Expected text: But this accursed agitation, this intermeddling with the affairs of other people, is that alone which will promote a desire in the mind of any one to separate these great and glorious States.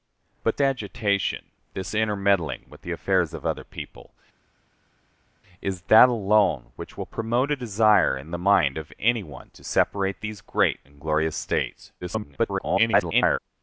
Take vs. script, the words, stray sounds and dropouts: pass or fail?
fail